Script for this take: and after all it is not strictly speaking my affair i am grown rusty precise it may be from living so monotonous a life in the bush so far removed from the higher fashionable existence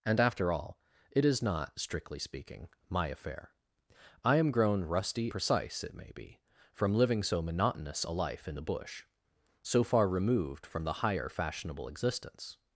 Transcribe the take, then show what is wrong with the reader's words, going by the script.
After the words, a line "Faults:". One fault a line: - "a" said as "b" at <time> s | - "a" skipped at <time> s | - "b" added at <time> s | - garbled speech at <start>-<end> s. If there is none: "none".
and after all it is not strictly speaking my affair i am grown rusty precise it may be from living so monotonous a life in the bush so far removed from the higher fashionable existence
Faults:
none